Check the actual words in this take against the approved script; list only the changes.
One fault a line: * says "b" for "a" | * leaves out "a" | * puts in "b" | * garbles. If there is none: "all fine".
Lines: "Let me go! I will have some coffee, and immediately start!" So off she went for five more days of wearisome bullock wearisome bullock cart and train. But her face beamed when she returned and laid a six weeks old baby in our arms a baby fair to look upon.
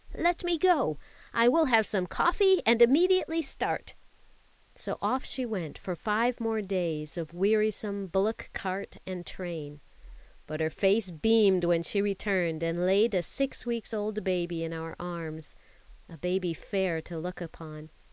* leaves out "wearisome bullock"